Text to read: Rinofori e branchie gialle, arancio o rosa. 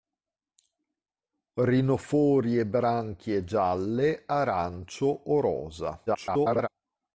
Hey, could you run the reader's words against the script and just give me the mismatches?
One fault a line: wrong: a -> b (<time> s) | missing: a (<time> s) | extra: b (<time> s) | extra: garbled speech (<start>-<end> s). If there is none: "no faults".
extra: garbled speech (6.1-6.7 s)